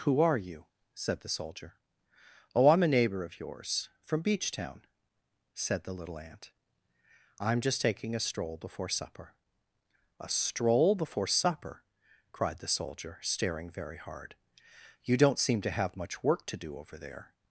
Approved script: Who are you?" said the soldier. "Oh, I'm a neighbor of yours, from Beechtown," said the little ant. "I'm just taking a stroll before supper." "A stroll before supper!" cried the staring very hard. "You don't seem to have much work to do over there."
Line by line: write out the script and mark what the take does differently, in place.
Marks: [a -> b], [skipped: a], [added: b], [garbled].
Who are you?" said the soldier. "Oh, I'm a neighbor of yours, from Beechtown," said the little ant. "I'm just taking a stroll before supper." "A stroll before supper!" cried the [added: soldier] staring very hard. "You don't seem to have much work to do over there."